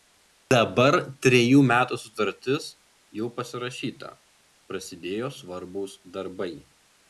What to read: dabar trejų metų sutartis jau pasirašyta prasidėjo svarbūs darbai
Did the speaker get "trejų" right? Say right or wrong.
right